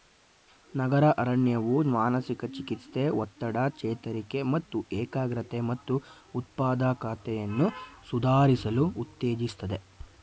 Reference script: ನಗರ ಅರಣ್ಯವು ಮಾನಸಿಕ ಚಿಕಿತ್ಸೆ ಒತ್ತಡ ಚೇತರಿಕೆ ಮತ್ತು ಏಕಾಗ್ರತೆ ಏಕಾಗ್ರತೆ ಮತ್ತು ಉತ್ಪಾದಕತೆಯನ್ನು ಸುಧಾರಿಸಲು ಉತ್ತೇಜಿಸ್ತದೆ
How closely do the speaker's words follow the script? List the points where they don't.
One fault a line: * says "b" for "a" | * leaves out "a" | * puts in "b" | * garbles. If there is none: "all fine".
* leaves out "ಏಕಾಗ್ರತೆ"